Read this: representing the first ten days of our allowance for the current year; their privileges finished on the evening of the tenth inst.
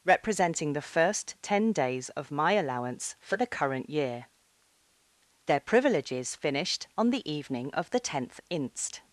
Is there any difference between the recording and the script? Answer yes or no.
yes